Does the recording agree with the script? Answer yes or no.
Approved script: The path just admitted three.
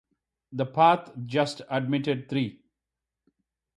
yes